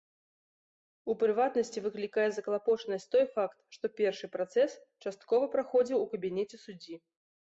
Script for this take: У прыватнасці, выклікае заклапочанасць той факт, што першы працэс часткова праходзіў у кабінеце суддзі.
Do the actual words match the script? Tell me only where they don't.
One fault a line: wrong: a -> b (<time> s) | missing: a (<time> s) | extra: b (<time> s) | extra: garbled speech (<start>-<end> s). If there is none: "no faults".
no faults